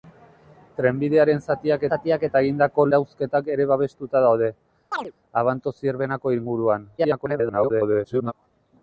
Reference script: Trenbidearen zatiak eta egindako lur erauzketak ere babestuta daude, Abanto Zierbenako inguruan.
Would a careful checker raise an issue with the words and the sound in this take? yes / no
yes